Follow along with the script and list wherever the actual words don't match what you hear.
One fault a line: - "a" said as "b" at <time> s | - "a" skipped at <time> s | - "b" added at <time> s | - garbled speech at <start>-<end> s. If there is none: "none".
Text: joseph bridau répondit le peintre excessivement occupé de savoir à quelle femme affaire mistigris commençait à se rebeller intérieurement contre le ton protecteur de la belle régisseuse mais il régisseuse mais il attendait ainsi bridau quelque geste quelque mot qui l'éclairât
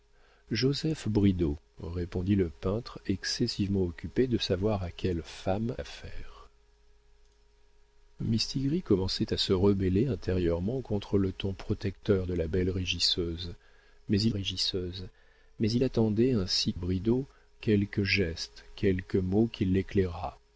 none